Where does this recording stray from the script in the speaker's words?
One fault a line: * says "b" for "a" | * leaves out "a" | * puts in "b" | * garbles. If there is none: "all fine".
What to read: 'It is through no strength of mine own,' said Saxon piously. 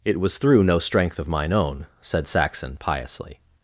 * says "was" for "is"